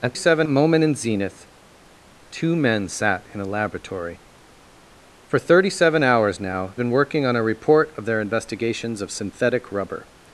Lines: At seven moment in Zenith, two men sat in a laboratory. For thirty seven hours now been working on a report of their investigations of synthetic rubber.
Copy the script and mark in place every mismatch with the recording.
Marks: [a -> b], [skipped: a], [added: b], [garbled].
At seven moment in Zenith, two men sat in a laboratory. For thirty seven hours now been working on a report of their investigations of synthetic rubber.